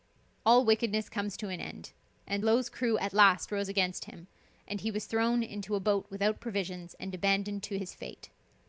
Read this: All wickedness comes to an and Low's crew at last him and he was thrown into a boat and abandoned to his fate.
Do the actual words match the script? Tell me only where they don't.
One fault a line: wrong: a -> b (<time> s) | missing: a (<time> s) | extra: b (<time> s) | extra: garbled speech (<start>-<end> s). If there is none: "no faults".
extra: end (1.6 s)
extra: rose against (3.5 s)
extra: without provisions (6.1 s)